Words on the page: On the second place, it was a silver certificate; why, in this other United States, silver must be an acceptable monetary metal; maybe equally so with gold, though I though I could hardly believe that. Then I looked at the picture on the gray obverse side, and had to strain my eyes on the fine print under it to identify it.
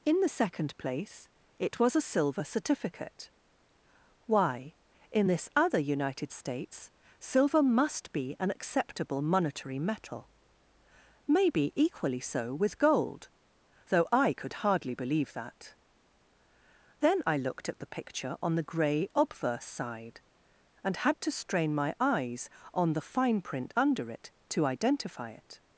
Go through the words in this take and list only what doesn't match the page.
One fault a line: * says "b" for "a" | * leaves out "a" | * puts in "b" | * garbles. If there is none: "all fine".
* says "In" for "On"
* leaves out "though I"